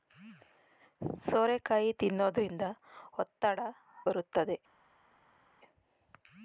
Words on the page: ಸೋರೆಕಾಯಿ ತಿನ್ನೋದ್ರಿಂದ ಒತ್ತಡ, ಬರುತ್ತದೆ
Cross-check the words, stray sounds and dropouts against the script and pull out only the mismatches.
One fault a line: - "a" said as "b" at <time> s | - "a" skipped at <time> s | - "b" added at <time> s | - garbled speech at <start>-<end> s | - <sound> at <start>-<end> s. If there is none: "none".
none